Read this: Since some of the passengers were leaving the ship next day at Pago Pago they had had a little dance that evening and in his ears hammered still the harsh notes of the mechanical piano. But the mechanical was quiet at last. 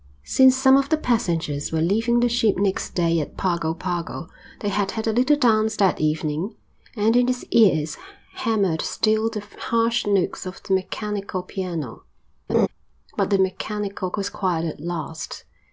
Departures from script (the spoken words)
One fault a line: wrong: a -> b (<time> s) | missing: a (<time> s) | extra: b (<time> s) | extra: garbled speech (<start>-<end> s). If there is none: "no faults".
no faults